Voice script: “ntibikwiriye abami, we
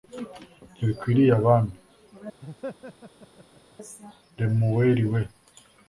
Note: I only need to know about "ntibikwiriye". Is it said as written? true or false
true